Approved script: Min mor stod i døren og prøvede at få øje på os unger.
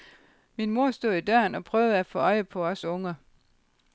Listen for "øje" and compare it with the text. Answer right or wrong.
right